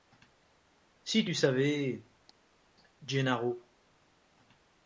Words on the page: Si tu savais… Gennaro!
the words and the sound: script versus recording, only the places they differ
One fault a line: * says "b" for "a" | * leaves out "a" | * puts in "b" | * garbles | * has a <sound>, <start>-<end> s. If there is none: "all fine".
all fine